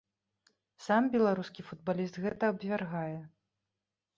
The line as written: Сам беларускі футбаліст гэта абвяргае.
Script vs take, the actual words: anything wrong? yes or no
no